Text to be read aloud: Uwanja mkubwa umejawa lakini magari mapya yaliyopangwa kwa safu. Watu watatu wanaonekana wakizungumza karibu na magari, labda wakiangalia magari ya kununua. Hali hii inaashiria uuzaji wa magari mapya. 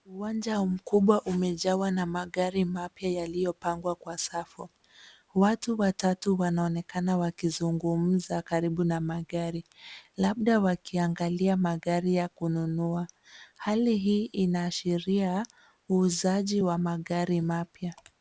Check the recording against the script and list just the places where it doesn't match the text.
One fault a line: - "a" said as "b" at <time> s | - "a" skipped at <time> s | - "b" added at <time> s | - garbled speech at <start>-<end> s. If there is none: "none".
- "lakini" said as "na" at 1.9 s